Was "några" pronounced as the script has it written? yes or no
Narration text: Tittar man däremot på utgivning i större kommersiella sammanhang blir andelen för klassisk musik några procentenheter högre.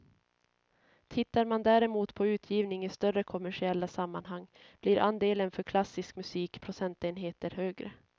no